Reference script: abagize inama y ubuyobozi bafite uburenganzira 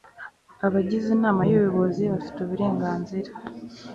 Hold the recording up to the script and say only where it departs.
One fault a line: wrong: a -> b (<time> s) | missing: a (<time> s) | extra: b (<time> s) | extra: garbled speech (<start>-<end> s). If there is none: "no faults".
no faults